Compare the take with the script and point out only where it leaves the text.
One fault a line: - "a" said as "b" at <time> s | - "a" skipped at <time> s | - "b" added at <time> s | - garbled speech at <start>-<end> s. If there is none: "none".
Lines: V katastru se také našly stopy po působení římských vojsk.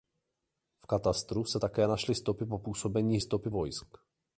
- "římských" said as "stopy" at 3.2 s